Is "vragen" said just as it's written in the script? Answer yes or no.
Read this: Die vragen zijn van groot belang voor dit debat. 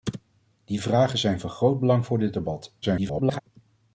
yes